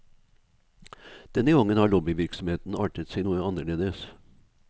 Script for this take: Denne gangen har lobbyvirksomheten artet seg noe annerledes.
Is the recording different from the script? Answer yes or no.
no